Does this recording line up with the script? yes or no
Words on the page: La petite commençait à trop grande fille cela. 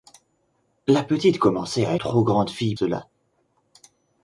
yes